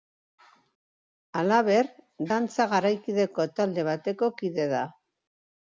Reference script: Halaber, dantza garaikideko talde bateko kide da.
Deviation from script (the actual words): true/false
false